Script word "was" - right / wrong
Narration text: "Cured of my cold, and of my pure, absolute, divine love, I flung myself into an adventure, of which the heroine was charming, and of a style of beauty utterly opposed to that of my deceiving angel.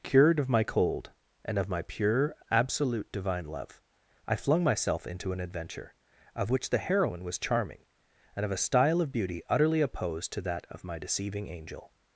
right